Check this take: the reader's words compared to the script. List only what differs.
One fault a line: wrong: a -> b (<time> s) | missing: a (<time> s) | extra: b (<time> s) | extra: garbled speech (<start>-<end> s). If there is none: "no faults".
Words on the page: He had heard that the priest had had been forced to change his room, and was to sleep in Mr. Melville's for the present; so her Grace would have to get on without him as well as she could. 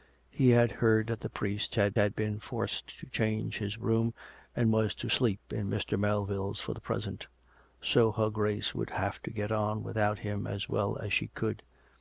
no faults